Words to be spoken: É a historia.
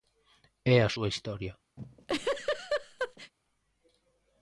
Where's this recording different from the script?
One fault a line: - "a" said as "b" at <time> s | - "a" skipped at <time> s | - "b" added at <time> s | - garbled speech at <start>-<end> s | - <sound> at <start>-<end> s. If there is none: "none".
- "súa" added at 0.9 s
- laugh at 1.8-3.3 s